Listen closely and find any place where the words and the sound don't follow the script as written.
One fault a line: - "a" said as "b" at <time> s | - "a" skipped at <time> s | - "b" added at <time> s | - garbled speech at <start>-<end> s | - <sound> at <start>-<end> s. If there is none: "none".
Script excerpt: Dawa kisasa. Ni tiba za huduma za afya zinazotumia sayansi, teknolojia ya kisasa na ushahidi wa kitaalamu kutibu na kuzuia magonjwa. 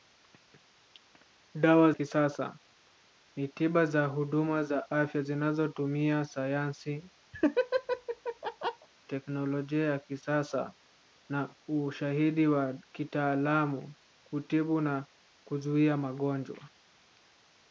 - laugh at 7.3-8.9 s